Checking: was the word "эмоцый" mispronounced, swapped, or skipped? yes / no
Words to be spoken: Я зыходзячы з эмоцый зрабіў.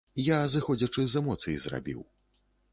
no